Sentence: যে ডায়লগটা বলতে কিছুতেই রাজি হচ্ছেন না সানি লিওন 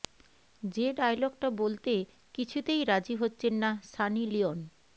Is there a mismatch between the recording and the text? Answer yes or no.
no